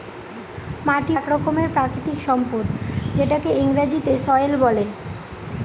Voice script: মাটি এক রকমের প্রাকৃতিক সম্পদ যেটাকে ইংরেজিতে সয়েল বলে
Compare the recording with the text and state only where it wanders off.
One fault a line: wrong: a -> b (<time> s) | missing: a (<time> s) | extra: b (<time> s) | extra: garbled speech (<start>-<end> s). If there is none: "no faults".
no faults